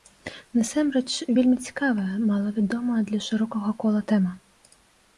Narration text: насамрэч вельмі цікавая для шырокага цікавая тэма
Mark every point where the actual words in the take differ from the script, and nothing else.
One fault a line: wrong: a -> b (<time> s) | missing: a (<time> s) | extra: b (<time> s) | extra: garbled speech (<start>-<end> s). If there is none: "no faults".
extra: малавядомая (2.3 s)
wrong: цікавая -> кола (3.9 s)